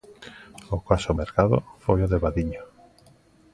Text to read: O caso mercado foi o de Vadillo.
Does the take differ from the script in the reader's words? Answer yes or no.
no